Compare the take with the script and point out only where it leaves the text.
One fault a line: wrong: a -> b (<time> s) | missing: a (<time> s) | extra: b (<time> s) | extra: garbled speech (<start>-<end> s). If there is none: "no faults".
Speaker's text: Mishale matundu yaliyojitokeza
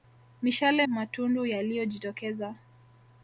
no faults